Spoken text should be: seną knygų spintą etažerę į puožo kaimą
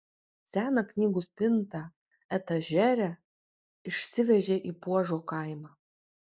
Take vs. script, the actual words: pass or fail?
fail